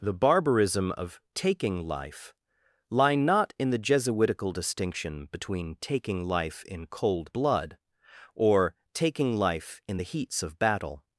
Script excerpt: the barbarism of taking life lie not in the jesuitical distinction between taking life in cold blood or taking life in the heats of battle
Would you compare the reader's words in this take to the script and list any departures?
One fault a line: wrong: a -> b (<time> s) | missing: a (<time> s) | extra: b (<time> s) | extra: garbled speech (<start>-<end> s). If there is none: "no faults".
no faults